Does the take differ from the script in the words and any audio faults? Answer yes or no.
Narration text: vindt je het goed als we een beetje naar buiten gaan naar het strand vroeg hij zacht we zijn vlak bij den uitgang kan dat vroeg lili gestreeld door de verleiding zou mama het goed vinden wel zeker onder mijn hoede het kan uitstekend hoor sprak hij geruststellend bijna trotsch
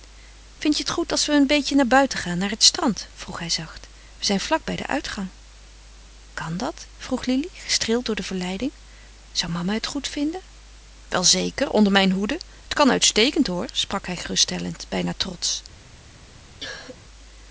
yes